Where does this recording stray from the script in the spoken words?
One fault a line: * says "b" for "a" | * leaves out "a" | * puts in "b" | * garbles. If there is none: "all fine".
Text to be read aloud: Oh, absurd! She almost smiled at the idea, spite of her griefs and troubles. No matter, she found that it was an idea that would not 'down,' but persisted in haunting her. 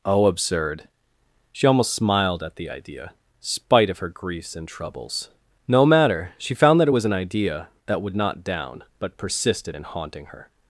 all fine